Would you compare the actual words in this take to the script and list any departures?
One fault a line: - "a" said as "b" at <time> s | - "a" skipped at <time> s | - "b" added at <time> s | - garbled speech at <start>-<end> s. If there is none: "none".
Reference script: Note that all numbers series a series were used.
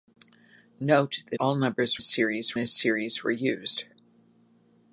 none